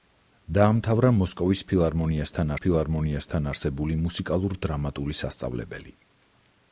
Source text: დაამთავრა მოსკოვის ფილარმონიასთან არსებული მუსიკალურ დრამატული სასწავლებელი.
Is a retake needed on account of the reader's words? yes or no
yes